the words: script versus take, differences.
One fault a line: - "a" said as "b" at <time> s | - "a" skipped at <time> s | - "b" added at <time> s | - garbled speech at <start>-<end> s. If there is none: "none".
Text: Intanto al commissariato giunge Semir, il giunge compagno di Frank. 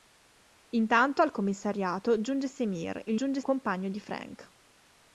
none